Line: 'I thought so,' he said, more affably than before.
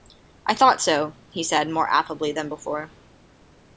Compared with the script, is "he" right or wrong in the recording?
right